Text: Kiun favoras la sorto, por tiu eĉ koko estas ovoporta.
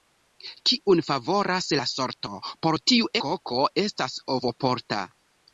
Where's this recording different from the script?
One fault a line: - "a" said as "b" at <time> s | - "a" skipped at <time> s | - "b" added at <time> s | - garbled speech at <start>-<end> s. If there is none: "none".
- "eĉ" skipped at 3.1 s